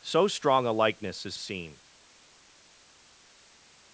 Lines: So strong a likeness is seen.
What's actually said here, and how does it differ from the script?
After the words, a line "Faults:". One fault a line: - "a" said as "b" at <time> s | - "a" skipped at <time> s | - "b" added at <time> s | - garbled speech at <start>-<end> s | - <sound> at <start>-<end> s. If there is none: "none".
So strong a likeness is seen.
Faults:
none